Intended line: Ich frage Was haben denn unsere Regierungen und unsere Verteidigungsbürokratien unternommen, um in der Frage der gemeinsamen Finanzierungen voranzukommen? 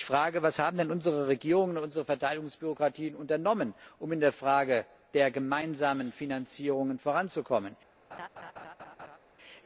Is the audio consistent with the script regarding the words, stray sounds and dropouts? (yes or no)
no